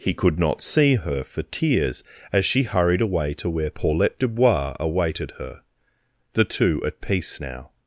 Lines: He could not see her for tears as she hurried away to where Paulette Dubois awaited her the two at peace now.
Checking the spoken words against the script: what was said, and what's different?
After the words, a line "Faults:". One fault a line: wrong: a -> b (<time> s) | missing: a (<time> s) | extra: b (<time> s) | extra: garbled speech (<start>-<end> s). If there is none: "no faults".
He could not see her for tears as she hurried away to where Paulette Dubois awaited her the two at peace now.
Faults:
no faults